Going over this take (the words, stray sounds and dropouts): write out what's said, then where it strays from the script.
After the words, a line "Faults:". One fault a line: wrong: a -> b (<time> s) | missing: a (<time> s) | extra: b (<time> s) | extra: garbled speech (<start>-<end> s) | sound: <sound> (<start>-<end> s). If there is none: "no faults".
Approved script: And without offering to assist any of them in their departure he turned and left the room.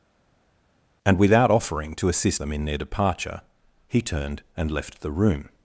And without offering to assist them in their departure he turned and left the room.
Faults:
missing: any of (2.4 s)